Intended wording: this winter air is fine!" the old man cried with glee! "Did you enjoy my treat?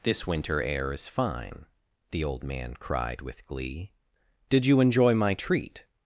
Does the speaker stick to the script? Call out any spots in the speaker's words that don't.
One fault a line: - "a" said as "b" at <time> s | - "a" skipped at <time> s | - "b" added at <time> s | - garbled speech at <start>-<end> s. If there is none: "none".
none